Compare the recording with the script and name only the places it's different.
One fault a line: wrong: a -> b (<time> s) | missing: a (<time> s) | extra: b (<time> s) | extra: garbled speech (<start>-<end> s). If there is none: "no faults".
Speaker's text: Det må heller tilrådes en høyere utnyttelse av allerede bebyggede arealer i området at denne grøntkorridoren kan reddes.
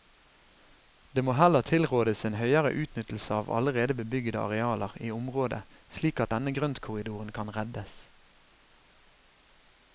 extra: slik (6.0 s)